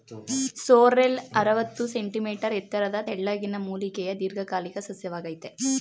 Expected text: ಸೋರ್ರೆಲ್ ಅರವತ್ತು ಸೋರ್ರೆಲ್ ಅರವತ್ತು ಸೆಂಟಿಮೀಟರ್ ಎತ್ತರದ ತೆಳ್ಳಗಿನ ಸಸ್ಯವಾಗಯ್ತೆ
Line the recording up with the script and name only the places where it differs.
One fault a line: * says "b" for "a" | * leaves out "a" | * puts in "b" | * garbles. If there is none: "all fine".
* leaves out "ಸೋರ್ರೆಲ್ ಅರವತ್ತು"
* puts in "ಮೂಲಿಕೆಯ ದೀರ್ಘಕಾಲಿಕ"